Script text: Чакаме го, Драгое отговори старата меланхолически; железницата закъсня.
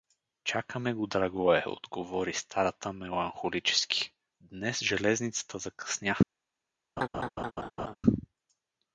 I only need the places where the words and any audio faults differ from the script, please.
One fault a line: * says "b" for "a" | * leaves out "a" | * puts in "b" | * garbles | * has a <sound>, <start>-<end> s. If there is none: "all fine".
* puts in "днес"
* has a laugh, 7.0-8.0 s